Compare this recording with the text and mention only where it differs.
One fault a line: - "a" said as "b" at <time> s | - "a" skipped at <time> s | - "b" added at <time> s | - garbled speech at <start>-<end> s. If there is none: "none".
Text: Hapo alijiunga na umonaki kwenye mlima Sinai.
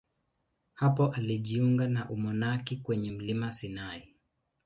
none